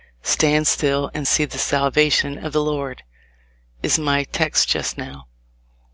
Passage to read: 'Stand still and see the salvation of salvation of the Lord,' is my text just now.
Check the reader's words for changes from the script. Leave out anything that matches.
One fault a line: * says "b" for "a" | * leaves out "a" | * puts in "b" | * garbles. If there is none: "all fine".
* leaves out "salvation of"